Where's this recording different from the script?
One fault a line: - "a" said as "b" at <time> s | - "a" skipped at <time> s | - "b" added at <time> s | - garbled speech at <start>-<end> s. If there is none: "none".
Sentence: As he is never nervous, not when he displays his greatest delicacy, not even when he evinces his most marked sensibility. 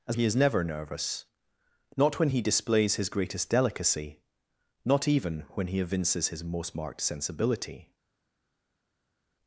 none